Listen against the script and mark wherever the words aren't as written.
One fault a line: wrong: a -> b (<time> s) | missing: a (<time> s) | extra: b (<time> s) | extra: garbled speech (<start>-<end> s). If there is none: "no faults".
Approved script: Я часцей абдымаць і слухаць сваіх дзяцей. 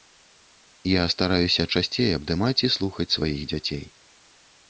extra: стараюся (1.1 s)